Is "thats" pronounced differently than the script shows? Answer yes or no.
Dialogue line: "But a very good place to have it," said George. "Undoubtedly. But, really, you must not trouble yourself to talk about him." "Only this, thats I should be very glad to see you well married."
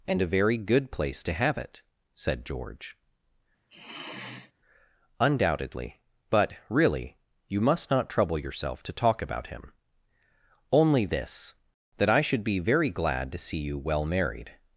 yes